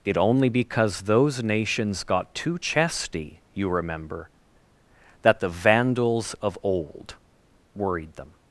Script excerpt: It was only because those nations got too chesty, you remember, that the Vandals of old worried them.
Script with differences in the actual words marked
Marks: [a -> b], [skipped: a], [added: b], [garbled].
It [skipped: was] only because those nations got too chesty, you remember, that the Vandals of old worried them.